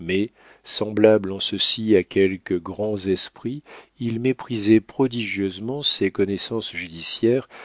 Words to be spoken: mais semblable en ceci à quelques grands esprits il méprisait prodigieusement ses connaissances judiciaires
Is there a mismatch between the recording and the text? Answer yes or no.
no